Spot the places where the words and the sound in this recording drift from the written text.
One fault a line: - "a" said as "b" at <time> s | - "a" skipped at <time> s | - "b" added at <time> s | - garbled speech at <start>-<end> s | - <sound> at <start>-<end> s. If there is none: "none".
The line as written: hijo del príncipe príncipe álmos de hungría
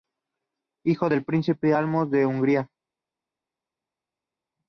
- "príncipe" skipped at 1.7 s